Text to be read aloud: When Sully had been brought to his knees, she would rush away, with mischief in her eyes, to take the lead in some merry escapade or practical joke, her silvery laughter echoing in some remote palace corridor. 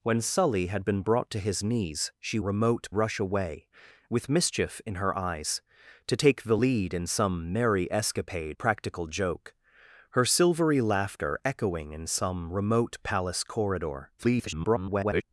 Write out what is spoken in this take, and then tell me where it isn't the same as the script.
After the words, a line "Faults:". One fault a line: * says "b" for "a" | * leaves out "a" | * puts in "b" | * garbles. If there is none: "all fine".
When Sully had been brought to his knees, she remote rush away, with mischief in her eyes, to take the lead in some merry escapade practical joke, her silvery laughter echoing in some remote palace corridor. [garbled]
Faults:
* says "remote" for "would"
* leaves out "or"
* garbles